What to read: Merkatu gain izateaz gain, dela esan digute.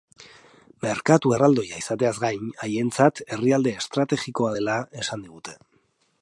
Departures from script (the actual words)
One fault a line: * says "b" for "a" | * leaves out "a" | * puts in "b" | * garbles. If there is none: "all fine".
* says "erraldoia" for "gain"
* puts in "haientzat herrialde estrategikoa"